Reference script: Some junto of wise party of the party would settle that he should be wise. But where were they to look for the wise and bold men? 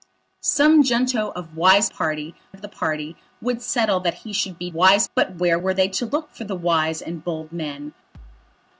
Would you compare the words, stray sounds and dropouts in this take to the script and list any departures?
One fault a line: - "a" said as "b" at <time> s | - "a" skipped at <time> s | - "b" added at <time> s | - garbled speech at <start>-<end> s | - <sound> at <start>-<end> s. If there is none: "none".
- thud at 8.1-8.6 s